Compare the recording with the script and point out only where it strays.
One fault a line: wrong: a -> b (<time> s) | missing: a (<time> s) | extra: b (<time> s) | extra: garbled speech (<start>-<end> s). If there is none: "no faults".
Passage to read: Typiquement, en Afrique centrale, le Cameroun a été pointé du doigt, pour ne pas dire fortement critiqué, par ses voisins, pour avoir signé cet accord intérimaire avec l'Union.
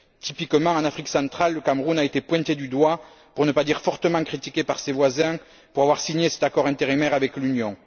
no faults